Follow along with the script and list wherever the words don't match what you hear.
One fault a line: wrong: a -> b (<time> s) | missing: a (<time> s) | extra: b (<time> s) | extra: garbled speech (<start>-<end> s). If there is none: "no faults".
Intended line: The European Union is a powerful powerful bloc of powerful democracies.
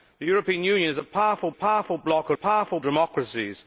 no faults